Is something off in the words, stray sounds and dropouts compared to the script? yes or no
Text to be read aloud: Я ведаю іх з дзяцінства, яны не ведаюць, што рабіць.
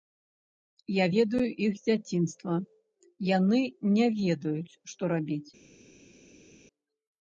no